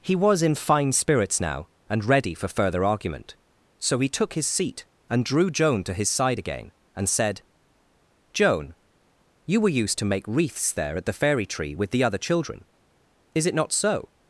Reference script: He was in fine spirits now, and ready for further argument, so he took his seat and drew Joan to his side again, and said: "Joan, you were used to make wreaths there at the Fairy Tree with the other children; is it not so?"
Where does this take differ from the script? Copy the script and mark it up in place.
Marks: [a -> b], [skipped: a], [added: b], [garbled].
He was in fine spirits now, and ready for further argument, so he took his seat and drew Joan to his side again, and said: "Joan, you were used to make wreaths there at the Fairy Tree with the other children; is it not so?"